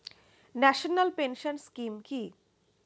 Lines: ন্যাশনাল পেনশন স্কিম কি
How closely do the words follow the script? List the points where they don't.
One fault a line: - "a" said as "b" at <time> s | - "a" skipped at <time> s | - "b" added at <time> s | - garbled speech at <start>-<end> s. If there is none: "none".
none